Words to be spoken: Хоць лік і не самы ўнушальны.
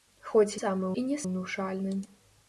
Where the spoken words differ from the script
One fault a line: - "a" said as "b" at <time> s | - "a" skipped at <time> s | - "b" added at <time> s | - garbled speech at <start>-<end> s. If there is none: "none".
- "лік" said as "самы" at 0.6 s
- "самы" skipped at 1.2 s